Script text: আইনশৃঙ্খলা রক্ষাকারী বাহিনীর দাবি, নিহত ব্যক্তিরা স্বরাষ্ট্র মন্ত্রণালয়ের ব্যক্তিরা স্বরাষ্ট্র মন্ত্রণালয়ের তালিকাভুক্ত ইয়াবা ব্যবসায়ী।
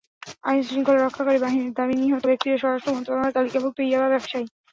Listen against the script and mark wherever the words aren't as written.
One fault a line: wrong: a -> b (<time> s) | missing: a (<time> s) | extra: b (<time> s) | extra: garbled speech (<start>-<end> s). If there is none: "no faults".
missing: ব্যক্তিরা স্বরাষ্ট্র মন্ত্রণালয়ের (3.4 s)